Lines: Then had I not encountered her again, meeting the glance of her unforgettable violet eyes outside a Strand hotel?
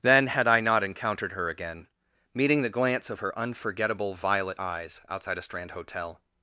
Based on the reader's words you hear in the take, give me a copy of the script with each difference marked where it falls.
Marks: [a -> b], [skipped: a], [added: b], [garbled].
Then had I not encountered her again, meeting the glance of her unforgettable violet eyes outside a Strand hotel?